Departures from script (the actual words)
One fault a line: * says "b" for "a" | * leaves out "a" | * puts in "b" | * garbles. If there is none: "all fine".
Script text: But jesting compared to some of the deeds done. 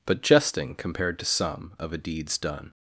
* says "a" for "the"